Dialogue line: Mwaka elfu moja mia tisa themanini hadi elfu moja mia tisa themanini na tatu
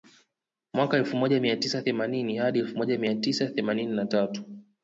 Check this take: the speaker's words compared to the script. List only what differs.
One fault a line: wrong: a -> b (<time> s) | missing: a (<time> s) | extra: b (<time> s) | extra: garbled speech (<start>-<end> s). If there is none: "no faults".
no faults